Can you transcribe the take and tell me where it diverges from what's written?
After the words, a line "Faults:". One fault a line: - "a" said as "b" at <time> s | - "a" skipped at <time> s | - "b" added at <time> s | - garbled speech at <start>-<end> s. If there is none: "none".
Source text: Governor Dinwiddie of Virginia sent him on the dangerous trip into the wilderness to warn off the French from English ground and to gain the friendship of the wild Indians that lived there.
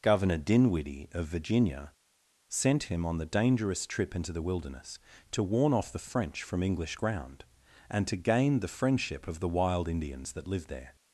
Governor Dinwiddie of Virginia sent him on the dangerous trip into the wilderness to warn off the French from English ground and to gain the friendship of the wild Indians that lived there.
Faults:
none